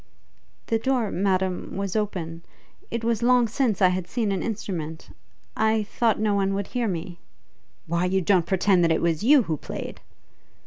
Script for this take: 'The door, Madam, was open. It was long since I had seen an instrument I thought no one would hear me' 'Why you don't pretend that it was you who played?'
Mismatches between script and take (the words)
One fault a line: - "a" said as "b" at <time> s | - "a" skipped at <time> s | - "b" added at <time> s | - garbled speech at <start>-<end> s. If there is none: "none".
none